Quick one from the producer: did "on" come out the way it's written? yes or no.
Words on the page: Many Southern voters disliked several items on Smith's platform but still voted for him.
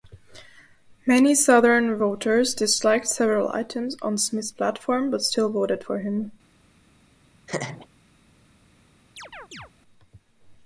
yes